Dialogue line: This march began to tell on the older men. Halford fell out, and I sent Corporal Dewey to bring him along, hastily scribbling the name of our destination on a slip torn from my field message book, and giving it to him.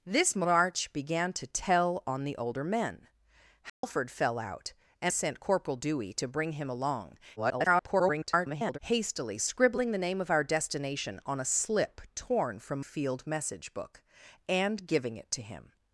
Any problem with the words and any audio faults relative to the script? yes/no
yes